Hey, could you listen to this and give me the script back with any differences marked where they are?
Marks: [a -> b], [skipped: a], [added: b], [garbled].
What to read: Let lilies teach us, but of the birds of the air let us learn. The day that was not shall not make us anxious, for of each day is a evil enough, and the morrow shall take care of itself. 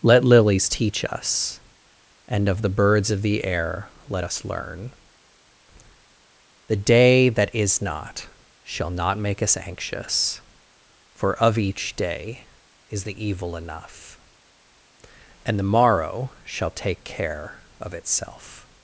Let lilies teach us, [but -> and] of the birds of the air let us learn. The day that [was -> is] not shall not make us anxious, for of each day is [a -> the] evil enough, and the morrow shall take care of itself.